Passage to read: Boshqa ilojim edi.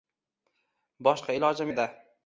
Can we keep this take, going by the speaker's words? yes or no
yes